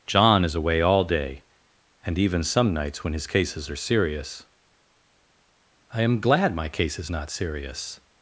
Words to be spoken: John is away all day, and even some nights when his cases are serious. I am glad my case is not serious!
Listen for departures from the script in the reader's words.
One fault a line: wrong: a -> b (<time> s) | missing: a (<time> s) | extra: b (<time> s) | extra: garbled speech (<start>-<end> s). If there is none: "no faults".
no faults